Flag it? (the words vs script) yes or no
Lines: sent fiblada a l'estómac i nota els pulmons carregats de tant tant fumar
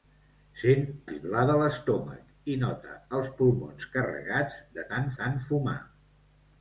no